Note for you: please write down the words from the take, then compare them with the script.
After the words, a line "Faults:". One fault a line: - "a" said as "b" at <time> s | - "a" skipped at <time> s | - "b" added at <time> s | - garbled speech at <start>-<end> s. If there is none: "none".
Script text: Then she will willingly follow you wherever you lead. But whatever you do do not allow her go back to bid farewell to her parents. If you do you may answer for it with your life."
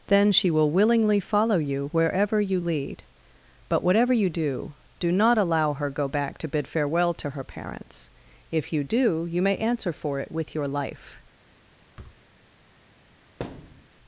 Then she will willingly follow you wherever you lead. But whatever you do do not allow her go back to bid farewell to her parents. If you do you may answer for it with your life."
Faults:
none